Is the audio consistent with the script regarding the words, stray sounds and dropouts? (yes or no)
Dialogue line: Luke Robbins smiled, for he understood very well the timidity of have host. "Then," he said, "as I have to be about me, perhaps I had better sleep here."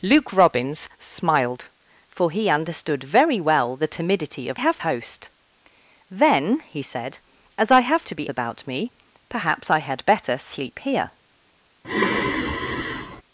no